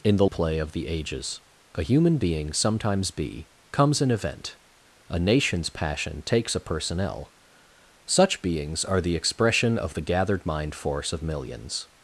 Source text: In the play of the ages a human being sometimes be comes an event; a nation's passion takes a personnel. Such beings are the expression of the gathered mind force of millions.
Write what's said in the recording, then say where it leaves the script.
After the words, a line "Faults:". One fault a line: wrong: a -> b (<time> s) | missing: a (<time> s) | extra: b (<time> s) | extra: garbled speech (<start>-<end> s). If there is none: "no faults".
In the play of the ages a human being sometimes be comes an event; a nation's passion takes a personnel. Such beings are the expression of the gathered mind force of millions.
Faults:
no faults